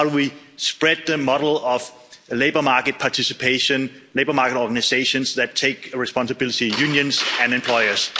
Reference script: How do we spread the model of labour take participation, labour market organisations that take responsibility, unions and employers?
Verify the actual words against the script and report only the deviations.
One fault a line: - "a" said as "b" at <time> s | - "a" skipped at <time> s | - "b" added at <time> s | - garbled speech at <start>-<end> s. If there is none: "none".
- "take" said as "market" at 2.6 s